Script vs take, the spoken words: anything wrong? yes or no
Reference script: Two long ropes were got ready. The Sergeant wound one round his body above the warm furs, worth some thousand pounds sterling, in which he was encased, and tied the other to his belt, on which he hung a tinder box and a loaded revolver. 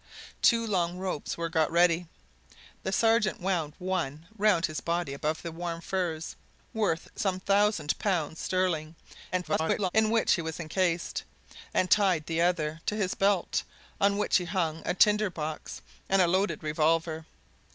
yes